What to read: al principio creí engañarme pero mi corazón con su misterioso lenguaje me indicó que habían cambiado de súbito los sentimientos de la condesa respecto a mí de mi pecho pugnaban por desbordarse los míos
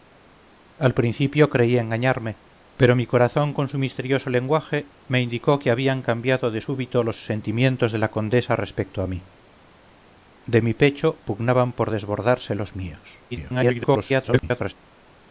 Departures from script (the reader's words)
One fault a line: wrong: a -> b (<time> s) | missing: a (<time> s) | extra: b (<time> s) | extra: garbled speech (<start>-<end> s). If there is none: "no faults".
extra: garbled speech (13.3-14.7 s)